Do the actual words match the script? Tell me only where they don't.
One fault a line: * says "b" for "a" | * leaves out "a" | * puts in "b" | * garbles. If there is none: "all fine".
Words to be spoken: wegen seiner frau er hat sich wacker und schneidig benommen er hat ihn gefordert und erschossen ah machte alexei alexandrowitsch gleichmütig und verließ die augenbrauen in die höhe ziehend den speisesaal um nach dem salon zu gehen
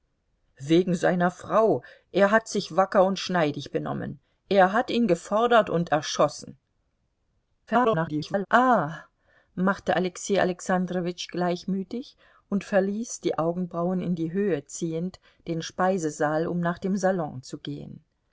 * garbles